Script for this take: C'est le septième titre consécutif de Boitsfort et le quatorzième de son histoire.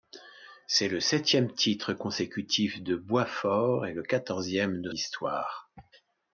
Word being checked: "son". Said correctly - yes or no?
no